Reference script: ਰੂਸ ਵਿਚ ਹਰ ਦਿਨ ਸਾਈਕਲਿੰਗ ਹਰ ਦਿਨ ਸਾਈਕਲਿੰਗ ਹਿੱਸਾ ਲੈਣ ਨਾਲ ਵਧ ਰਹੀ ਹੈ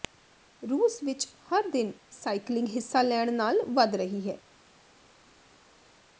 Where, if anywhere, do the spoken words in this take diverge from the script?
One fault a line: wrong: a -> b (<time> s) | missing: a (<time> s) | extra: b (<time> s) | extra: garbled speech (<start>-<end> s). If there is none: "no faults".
missing: ਹਰ ਦਿਨ ਸਾਈਕਲਿੰਗ (2.7 s)